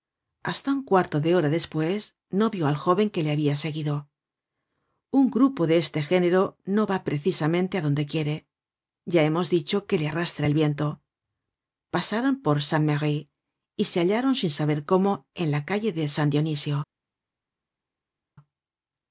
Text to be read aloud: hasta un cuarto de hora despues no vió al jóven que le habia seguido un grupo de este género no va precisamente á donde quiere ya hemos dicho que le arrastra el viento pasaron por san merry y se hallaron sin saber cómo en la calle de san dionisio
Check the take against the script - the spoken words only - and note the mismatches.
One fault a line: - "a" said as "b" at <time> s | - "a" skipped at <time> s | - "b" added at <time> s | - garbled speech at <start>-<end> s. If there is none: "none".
none